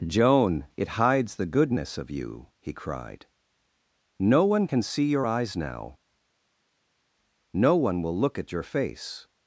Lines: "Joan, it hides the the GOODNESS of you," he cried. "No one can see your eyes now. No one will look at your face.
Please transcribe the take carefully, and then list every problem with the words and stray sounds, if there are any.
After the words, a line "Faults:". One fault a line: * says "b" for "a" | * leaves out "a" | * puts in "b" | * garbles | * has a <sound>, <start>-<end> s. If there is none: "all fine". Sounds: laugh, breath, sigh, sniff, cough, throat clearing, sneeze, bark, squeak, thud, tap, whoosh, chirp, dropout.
"Joan, it hides the GOODNESS of you," he cried. "No one can see your eyes now. No one will look at your face.
Faults:
* leaves out "the"